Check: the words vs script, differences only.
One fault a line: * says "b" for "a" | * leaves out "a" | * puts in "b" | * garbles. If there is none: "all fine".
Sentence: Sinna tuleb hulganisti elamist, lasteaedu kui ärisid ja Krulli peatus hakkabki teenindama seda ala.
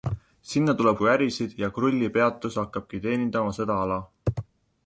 * leaves out "hulganisti elamist lasteaedu"